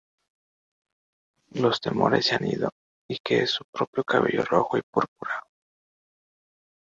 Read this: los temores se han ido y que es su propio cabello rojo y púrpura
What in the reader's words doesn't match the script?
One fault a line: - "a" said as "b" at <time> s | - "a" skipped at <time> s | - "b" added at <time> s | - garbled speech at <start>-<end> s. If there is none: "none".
none